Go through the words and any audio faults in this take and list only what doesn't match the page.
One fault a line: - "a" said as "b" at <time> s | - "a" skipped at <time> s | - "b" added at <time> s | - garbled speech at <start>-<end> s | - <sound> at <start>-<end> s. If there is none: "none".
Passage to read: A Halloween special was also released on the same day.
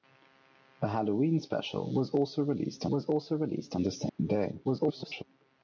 - "was also released" added at 2.9 s
- dropout at 4.1-4.2 s
- garbled speech at 4.6-5.2 s